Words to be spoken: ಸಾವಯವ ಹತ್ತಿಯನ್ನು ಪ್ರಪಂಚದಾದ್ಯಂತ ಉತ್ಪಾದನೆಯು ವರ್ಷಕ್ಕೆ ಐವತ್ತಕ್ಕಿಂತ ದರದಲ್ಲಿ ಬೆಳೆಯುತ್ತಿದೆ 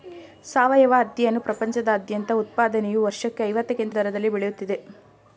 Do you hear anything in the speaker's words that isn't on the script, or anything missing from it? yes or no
no